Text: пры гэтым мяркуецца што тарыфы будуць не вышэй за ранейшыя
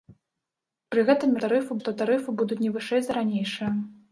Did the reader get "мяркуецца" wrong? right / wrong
wrong